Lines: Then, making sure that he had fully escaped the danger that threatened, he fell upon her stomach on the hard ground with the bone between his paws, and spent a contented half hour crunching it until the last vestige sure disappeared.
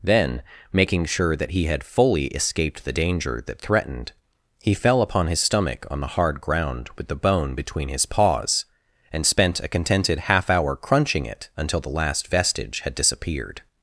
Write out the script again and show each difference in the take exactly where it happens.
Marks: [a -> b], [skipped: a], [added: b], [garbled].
Then, making sure that he had fully escaped the danger that threatened, he fell upon [her -> his] stomach on the hard ground with the bone between his paws, and spent a contented half hour crunching it until the last vestige [sure -> had] disappeared.